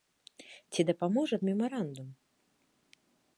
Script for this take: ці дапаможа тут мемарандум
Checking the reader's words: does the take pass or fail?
fail